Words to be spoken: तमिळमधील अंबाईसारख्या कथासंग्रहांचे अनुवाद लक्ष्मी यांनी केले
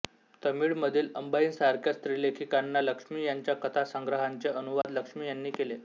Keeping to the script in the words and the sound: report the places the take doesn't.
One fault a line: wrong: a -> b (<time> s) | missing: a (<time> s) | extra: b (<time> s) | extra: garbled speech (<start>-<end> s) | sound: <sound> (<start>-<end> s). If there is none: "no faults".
extra: स्त्रीलेखिकांना लक्ष्मी यांच्या (1.9 s)
sound: dropout (4.8-4.8 s)